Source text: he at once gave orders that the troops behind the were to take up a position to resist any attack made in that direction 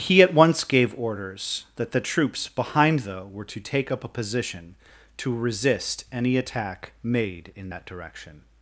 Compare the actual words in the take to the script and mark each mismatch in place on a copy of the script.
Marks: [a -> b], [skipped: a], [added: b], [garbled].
he at once gave orders that the troops behind the were to take up a position to resist any attack made in that direction